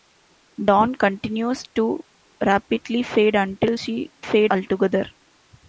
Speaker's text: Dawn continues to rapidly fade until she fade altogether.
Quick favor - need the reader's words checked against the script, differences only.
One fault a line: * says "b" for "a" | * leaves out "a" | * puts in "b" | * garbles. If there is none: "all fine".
all fine